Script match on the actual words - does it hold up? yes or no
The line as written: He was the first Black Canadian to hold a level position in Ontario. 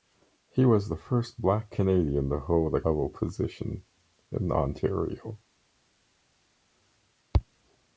yes